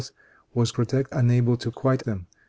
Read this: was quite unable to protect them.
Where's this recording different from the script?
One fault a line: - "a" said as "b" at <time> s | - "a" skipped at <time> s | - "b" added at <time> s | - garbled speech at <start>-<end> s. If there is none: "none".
- "quite" said as "protect" at 0.7 s
- "protect" said as "quite" at 1.7 s